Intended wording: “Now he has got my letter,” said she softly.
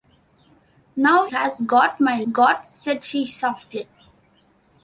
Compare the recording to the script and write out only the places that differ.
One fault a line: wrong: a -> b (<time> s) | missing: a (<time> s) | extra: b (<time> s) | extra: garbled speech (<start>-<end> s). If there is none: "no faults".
missing: he (1.3 s)
wrong: letter -> got (2.3 s)